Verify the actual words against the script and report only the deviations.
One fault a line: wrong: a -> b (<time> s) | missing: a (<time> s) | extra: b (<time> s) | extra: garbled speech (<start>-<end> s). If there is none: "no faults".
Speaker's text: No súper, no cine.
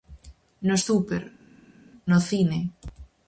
no faults